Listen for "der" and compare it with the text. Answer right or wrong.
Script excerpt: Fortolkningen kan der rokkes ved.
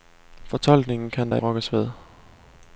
right